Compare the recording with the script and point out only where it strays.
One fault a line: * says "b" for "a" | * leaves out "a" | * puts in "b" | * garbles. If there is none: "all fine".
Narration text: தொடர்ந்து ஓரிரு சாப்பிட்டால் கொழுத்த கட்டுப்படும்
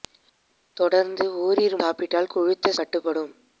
all fine